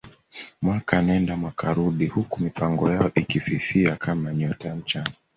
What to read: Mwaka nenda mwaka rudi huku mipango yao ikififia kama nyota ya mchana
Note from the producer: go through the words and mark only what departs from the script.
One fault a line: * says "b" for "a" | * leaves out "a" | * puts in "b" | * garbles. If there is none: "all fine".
all fine